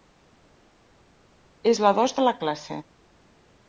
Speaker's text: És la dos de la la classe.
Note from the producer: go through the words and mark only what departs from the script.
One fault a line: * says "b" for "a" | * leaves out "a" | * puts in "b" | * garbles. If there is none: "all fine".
* leaves out "la"